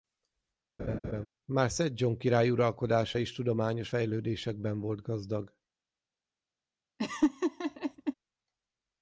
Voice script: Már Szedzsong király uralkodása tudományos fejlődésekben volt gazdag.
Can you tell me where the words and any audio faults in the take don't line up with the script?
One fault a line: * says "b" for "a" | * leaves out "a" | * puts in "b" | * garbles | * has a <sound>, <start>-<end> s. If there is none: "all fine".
* has a laugh, 0.8-1.3 s
* puts in "is"
* has a laugh, 7.0-8.1 s